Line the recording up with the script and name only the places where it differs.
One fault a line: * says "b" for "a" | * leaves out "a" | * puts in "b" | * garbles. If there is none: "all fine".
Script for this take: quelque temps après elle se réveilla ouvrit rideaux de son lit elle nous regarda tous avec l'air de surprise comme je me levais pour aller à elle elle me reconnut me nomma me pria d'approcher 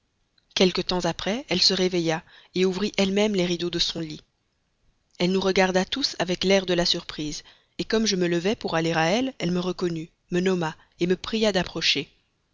* puts in "elle même les"
* puts in "la"